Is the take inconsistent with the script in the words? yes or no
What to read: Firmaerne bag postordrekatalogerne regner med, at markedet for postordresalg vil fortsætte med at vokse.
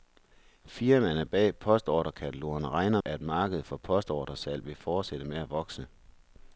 yes